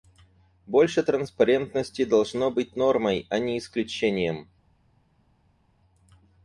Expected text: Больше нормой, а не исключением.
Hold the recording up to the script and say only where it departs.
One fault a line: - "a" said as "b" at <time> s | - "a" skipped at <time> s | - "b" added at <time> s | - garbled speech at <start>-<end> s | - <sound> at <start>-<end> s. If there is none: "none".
- "транспарентности должно быть" added at 1.0 s